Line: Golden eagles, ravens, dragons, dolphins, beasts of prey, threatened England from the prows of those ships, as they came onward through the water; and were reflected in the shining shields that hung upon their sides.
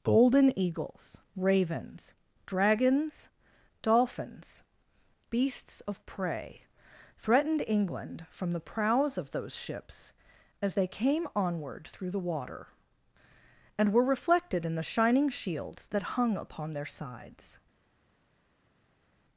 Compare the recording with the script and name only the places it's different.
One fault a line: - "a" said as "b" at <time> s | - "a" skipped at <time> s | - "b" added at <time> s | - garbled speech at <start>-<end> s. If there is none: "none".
none